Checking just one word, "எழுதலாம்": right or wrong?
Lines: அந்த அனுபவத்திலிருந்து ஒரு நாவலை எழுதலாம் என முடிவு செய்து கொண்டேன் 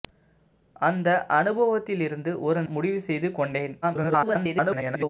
wrong